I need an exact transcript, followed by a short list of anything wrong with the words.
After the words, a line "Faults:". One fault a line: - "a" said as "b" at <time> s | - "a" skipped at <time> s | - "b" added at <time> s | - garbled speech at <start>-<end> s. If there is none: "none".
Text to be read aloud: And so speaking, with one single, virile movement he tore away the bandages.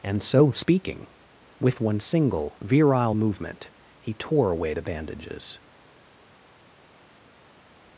And so speaking, with one single, virile movement he tore away the bandages.
Faults:
none